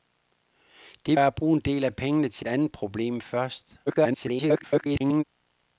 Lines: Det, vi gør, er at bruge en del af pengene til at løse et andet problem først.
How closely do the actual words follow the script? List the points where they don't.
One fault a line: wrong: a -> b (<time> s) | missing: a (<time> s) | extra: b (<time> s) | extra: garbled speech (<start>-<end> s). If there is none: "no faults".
missing: vi gør (1.2 s)
missing: at løse (2.4 s)
extra: garbled speech (3.9-5.2 s)